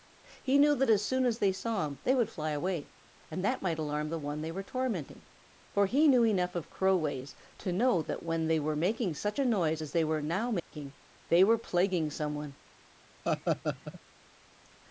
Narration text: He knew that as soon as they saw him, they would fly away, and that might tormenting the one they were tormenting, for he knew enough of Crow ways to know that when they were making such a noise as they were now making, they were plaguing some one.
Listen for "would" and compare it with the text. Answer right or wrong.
right